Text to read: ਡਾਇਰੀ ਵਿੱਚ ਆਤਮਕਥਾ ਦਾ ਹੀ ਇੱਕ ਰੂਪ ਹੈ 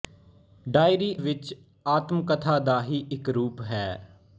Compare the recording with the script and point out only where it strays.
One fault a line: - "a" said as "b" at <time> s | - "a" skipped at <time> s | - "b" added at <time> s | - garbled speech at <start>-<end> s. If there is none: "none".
none